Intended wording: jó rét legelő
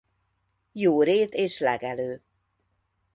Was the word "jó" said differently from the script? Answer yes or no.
no